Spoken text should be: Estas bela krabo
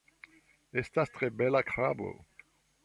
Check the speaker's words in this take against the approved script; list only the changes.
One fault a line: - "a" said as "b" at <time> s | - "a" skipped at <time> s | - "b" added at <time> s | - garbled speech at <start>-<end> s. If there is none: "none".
- "tre" added at 1.2 s